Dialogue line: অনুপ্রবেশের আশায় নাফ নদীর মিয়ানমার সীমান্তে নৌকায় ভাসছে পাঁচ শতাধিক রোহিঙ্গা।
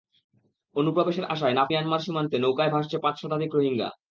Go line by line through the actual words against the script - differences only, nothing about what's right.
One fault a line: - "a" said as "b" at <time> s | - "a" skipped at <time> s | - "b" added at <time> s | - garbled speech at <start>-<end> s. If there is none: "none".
- "নদীর" skipped at 1.7 s